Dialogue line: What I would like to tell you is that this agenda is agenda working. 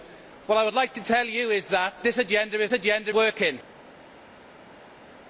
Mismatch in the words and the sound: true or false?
false